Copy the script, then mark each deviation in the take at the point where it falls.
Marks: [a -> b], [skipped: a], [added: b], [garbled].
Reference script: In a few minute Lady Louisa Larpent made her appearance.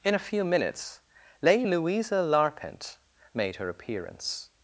In a few [minute -> minutes] Lady Louisa Larpent made her appearance.